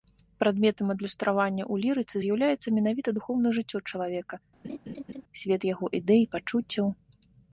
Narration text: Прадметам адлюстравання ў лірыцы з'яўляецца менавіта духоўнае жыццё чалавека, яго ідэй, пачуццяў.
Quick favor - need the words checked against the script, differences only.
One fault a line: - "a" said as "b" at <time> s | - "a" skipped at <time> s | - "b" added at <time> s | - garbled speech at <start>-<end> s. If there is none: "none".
- "свет" added at 5.4 s